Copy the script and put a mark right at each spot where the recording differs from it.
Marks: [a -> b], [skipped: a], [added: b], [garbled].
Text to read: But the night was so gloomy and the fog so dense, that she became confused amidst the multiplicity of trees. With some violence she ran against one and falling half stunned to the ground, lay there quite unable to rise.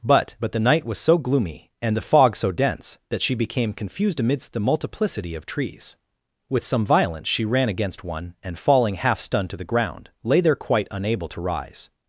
But [added: but] the night was so gloomy and the fog so dense, that she became confused amidst the multiplicity of trees. With some violence she ran against one and falling half stunned to the ground, lay there quite unable to rise.